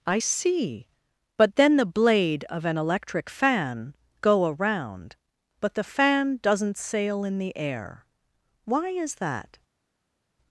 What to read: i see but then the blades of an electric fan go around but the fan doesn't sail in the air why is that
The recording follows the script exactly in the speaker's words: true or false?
false